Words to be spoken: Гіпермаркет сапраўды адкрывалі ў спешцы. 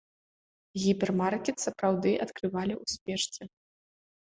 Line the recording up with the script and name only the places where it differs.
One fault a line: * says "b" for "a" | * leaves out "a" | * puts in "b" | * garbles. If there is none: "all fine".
all fine